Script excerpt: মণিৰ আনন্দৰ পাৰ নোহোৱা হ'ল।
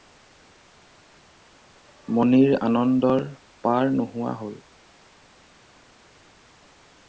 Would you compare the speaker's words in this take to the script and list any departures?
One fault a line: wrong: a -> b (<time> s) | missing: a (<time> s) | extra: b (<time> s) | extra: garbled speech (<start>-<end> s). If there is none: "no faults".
no faults